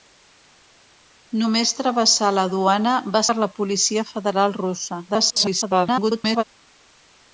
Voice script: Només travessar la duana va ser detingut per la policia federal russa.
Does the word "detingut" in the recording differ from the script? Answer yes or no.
yes